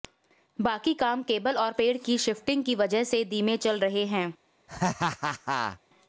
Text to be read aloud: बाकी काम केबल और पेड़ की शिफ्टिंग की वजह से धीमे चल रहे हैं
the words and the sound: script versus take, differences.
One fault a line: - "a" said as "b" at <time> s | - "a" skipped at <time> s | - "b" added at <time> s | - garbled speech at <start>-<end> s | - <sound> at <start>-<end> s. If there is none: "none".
- laugh at 4.7-5.8 s